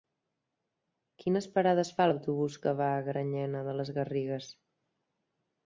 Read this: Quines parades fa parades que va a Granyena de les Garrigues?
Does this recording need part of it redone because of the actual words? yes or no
yes